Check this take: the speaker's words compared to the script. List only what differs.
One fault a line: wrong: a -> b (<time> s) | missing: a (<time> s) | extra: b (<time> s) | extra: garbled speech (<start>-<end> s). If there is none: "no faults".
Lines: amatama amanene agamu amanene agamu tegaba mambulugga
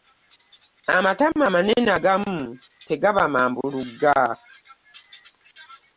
missing: amanene agamu (2.4 s)